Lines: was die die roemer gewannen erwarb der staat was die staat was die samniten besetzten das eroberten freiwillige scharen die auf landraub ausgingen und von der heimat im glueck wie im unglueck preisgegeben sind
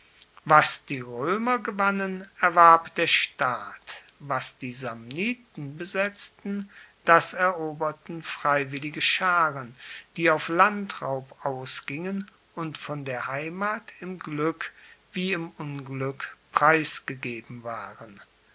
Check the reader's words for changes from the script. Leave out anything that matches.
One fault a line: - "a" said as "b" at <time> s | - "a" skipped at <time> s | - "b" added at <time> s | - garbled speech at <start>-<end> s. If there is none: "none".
- "die" skipped at 1.0 s
- "staat was die" skipped at 4.7 s
- "sind" said as "waren" at 17.6 s